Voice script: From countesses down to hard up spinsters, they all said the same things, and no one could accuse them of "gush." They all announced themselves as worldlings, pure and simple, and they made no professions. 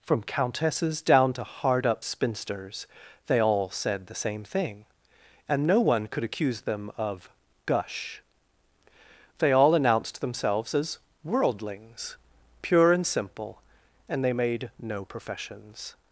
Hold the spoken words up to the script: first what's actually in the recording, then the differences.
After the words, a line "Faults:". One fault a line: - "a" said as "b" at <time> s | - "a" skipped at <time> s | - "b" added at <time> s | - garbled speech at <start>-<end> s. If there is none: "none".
From countesses down to hard up spinsters, they all said the same thing, and no one could accuse them of "gush." They all announced themselves as worldlings, pure and simple, and they made no professions.
Faults:
- "things" said as "thing" at 4.4 s